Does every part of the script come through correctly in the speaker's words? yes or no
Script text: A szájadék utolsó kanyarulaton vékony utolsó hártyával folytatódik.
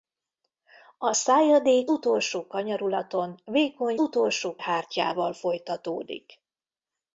yes